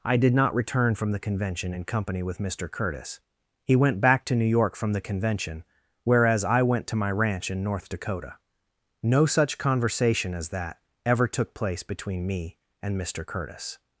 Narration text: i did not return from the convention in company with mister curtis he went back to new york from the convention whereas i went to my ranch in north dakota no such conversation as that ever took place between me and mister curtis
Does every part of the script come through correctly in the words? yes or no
yes